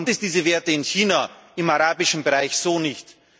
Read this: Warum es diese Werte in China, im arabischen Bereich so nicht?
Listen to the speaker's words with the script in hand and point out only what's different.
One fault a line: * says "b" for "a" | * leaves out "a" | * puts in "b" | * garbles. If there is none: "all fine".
all fine